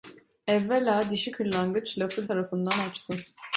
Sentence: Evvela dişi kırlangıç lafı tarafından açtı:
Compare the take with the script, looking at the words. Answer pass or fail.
pass